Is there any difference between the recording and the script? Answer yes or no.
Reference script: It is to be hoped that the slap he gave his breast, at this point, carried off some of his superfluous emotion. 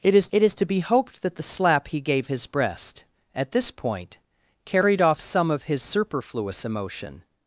yes